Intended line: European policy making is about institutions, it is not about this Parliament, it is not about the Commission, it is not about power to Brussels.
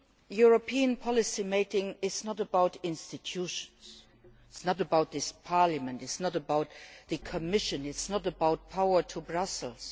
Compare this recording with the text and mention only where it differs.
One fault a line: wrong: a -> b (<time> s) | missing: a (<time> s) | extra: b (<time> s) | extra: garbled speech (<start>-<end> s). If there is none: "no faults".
extra: not (2.2 s)